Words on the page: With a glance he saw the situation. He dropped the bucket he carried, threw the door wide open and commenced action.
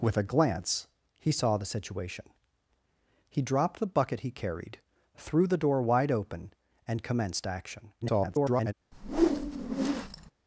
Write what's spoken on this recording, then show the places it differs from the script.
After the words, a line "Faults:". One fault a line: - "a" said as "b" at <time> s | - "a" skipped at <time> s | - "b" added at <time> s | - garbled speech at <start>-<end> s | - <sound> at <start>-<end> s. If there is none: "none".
With a glance he saw the situation. He dropped the bucket he carried, threw the door wide open and commenced action. [garbled]
Faults:
- garbled speech at 8.0-8.7 s
- whoosh at 8.9-10.3 s